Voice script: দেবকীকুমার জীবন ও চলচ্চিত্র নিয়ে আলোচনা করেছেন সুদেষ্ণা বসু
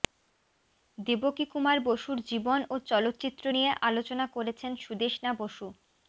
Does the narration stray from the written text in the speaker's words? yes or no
yes